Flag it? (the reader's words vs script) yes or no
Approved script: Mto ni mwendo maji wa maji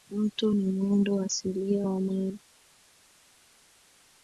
yes